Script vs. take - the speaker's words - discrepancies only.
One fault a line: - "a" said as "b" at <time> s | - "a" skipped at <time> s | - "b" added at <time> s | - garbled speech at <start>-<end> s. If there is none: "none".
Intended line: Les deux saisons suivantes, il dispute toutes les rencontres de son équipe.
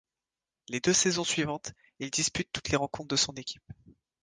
none